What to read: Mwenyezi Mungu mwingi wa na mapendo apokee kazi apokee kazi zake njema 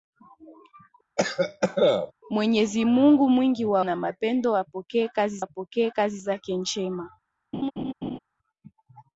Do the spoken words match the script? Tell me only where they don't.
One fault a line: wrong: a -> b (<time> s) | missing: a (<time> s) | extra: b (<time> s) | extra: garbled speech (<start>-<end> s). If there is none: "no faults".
no faults